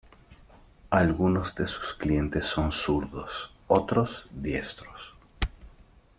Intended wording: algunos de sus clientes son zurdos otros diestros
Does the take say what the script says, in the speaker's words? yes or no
yes